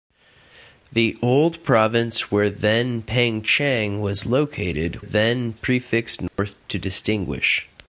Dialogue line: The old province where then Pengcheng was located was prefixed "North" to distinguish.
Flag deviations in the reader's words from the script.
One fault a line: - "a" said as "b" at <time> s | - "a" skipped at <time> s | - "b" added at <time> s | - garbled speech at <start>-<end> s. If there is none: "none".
- "was" said as "then" at 5.0 s